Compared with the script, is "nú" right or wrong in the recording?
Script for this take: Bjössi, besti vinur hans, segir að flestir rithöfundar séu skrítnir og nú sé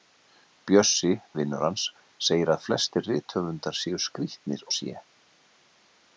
wrong